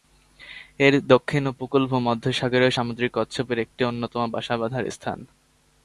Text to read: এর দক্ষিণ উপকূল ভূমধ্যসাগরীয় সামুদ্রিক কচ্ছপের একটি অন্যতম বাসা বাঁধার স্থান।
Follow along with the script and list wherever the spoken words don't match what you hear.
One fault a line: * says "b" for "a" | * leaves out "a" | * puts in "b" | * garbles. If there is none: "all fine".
all fine